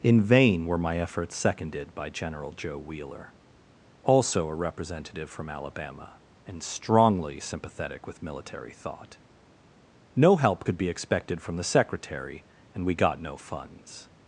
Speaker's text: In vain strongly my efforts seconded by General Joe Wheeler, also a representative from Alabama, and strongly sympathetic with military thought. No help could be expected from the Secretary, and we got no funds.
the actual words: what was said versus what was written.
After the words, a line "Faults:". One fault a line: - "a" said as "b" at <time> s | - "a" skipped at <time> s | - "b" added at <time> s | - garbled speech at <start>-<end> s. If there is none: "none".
In vain were my efforts seconded by General Joe Wheeler, also a representative from Alabama, and strongly sympathetic with military thought. No help could be expected from the Secretary, and we got no funds.
Faults:
- "strongly" said as "were" at 0.7 s